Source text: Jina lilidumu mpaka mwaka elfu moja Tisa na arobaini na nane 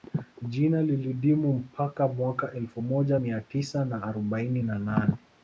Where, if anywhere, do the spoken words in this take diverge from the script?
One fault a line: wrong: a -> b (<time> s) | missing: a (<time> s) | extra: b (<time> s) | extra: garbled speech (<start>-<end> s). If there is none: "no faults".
extra: Mia (3.2 s)